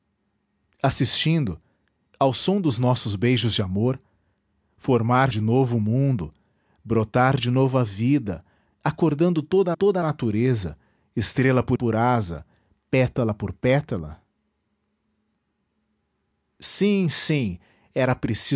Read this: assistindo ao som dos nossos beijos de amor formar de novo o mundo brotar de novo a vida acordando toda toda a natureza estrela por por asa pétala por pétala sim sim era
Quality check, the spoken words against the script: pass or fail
pass